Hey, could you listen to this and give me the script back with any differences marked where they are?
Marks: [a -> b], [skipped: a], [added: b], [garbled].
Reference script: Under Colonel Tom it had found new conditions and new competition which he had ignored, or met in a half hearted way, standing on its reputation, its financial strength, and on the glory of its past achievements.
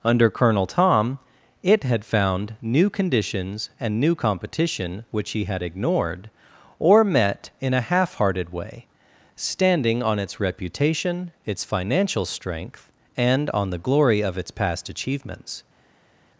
Under Colonel Tom it had found new conditions and new competition which he had ignored, or met in a half hearted way, standing on its reputation, its financial strength, and on the glory of its past achievements.